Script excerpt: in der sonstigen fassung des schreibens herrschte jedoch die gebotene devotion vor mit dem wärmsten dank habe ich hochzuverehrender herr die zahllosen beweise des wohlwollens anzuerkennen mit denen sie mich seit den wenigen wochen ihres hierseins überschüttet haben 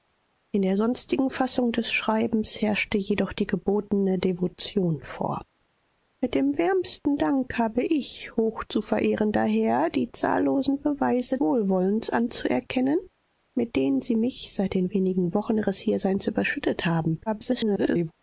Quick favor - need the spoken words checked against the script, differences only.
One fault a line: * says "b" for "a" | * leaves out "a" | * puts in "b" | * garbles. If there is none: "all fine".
* leaves out "des"
* garbles